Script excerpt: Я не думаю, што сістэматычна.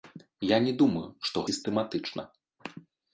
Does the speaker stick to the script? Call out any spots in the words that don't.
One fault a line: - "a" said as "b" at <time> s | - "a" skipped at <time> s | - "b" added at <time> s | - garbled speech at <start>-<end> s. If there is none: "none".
none